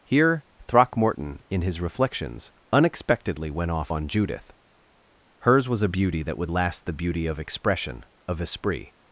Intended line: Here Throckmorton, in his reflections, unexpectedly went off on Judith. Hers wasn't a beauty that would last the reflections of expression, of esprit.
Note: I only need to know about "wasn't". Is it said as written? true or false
false